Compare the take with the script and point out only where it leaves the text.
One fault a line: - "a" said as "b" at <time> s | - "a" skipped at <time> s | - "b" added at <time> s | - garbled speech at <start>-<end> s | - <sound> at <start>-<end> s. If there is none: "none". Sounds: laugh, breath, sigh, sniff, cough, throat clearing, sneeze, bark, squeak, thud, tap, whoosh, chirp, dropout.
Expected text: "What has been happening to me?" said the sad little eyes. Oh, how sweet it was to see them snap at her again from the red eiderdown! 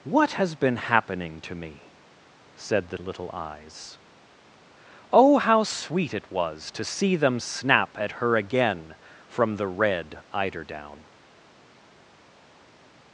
- "sad" skipped at 3.0 s